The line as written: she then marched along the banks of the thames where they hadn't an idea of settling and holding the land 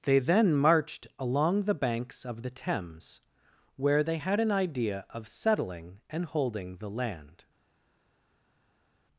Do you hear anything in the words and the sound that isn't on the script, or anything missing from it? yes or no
yes